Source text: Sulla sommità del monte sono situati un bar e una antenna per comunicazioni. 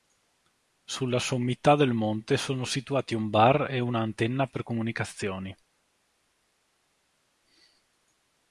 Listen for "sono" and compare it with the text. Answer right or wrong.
right